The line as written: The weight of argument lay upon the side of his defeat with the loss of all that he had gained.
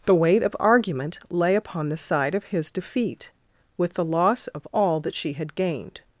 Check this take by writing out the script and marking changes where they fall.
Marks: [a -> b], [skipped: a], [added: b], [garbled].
The weight of argument lay upon the side of his defeat with the loss of all that [he -> she] had gained.